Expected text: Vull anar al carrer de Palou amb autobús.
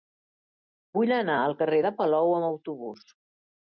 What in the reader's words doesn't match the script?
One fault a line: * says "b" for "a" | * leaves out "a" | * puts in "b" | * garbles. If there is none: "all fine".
all fine